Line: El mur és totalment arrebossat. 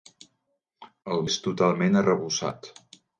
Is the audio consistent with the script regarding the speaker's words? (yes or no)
no